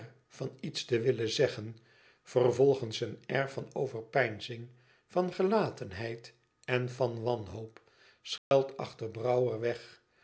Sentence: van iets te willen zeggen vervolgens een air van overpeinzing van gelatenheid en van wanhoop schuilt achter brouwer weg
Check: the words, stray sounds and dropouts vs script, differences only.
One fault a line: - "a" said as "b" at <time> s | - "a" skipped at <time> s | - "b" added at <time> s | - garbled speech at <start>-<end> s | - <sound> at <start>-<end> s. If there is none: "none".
- dropout at 8.4-8.5 s